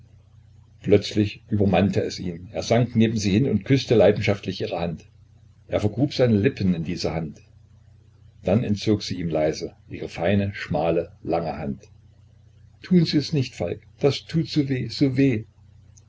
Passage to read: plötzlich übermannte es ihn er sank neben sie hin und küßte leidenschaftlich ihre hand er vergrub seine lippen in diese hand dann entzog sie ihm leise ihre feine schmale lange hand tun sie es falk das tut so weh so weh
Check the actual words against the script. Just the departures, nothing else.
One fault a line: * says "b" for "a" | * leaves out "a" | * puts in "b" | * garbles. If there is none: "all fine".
* puts in "nicht"